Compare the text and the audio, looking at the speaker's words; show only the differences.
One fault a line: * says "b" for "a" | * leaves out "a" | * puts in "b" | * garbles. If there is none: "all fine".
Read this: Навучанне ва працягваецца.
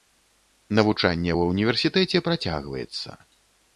* puts in "ўніверсітэце"